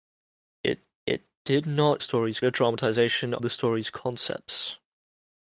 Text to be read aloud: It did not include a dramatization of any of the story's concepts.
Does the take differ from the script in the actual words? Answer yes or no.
yes